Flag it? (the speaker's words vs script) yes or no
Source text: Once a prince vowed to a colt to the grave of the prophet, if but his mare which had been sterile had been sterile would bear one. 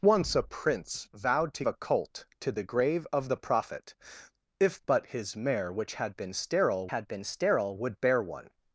no